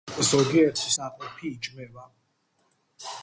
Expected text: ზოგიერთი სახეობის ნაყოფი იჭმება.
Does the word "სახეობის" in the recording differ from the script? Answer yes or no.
yes